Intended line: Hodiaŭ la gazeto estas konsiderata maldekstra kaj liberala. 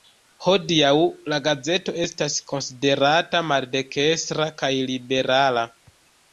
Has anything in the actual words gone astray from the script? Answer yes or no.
no